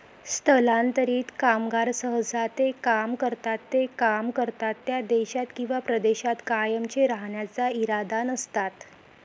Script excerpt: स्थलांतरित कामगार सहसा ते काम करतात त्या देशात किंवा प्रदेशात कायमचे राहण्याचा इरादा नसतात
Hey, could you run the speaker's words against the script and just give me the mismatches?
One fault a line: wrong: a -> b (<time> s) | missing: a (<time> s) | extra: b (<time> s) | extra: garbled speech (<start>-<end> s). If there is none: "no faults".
extra: ते काम करतात (3.7 s)